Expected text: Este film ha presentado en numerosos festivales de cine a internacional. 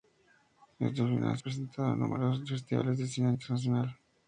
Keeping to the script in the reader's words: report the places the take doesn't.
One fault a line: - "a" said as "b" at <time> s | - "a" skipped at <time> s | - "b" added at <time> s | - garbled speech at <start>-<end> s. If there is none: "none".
none